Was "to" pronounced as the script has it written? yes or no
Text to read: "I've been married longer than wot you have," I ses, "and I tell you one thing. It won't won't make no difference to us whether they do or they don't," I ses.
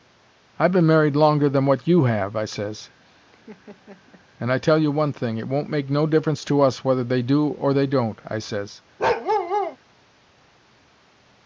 yes